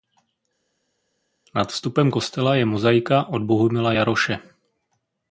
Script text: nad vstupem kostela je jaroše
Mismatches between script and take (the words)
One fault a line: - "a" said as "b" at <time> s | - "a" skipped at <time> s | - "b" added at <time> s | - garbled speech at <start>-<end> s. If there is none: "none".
- "mozaika od bohumila" added at 2.7 s